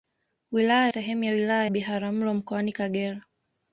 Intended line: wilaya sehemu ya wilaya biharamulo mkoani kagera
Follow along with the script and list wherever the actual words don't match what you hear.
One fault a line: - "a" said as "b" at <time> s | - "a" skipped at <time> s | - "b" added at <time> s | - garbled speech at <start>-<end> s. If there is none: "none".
none